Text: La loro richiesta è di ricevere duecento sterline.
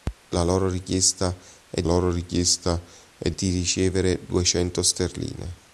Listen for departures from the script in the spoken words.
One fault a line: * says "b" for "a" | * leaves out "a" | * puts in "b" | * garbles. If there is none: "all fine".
* puts in "loro richiesta è"